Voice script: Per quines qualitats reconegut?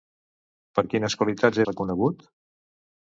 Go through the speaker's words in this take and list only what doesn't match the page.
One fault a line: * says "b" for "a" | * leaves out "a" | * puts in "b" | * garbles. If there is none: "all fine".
all fine